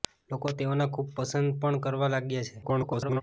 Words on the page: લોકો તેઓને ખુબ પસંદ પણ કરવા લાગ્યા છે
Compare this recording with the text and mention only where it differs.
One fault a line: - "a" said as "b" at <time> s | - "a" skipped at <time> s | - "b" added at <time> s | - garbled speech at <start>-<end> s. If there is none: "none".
- garbled speech at 2.6-3.2 s